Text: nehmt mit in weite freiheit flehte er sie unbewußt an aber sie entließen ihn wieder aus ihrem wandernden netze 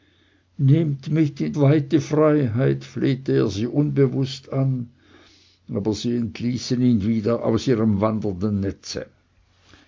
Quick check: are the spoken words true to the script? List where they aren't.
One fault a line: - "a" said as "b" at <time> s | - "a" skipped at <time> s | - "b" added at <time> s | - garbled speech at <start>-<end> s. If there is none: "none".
none